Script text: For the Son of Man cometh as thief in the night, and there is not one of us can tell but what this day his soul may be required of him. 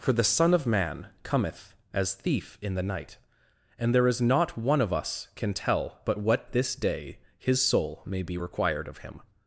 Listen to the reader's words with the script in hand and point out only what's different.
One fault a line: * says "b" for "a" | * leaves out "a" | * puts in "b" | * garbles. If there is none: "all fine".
all fine